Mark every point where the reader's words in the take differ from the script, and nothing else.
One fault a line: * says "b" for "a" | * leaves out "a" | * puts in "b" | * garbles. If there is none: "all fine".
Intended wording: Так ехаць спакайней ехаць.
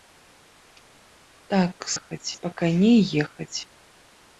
all fine